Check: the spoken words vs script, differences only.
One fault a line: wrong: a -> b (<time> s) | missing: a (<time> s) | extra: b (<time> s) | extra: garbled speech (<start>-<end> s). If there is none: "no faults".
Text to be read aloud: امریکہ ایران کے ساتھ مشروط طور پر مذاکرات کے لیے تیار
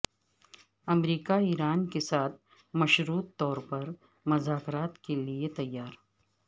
no faults